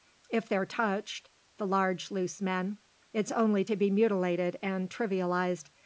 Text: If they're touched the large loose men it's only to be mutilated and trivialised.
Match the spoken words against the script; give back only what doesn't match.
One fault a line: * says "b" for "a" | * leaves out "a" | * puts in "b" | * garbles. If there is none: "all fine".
all fine